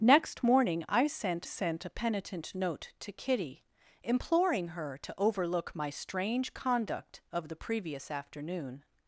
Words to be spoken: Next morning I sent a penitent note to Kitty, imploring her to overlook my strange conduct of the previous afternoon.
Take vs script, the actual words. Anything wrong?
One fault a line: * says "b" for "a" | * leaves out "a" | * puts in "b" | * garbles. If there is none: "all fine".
* puts in "sent"